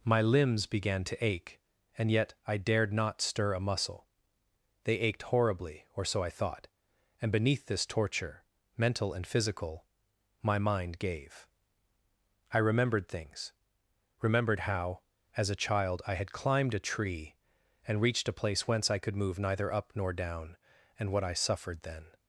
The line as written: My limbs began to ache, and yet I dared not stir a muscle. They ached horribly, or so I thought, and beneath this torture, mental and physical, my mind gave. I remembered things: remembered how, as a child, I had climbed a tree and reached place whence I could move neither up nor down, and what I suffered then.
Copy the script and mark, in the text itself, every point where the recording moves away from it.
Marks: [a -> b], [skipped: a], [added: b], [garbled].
My limbs began to ache, and yet I dared not stir a muscle. They ached horribly, or so I thought, and beneath this torture, mental and physical, my mind gave. I remembered things: remembered how, as a child, I had climbed a tree and reached [added: a] place whence I could move neither up nor down, and what I suffered then.